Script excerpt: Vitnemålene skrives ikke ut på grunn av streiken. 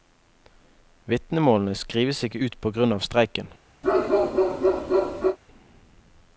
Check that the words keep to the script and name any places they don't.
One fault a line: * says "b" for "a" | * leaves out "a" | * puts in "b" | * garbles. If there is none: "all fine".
all fine